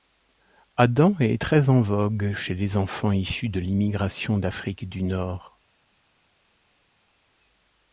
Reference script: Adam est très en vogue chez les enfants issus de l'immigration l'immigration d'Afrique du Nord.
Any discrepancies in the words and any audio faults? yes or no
yes